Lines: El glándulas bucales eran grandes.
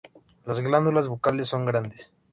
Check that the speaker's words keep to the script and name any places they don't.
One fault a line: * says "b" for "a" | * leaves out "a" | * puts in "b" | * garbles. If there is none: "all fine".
* says "Las" for "El"
* says "son" for "eran"